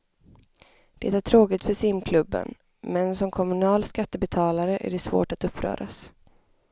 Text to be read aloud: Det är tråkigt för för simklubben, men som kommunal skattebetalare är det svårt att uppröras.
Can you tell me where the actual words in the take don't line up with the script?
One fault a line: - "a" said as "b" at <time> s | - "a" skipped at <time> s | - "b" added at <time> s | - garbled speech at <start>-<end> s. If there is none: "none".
- "för" skipped at 1.7 s